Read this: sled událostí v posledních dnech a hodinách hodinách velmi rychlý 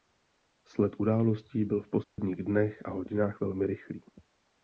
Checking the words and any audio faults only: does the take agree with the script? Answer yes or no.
no